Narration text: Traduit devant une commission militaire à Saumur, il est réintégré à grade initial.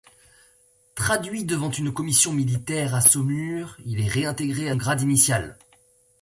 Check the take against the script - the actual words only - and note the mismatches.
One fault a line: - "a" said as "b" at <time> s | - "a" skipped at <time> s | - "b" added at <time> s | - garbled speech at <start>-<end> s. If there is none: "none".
none